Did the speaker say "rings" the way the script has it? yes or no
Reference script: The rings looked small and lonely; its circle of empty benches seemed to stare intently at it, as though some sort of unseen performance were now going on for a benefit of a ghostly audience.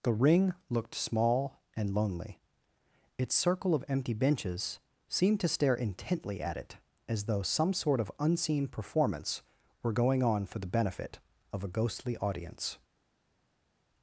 no